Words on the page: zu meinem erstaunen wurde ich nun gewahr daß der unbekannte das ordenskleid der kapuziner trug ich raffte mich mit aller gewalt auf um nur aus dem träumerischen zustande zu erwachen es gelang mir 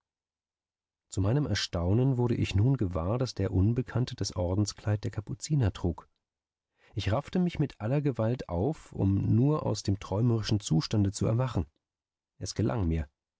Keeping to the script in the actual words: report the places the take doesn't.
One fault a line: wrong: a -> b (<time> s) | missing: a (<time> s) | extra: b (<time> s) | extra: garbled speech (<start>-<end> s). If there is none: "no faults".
no faults